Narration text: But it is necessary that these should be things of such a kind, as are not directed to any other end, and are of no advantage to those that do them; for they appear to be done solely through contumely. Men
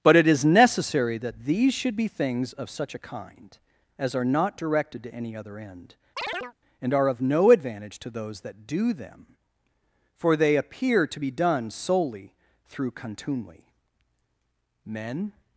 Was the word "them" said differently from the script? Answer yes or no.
no